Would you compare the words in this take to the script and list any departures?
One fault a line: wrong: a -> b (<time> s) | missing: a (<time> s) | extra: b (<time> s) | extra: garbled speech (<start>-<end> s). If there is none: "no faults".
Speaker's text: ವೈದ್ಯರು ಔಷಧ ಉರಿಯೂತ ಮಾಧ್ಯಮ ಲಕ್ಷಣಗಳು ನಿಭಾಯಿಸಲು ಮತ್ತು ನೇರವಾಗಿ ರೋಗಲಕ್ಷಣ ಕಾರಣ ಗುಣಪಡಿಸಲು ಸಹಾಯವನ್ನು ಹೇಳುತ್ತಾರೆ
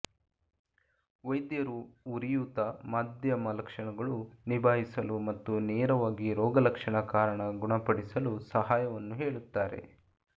missing: ಔಷಧ (1.8 s)